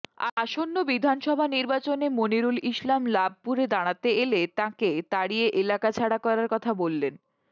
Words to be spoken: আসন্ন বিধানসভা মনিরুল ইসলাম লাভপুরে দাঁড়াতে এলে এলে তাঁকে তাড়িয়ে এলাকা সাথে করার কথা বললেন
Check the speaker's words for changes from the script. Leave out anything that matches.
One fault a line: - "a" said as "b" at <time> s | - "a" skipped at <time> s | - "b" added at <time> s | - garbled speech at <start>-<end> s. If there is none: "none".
- "নির্বাচনে" added at 1.6 s
- "এলে" skipped at 4.4 s
- "সাথে" said as "ছাড়া" at 5.9 s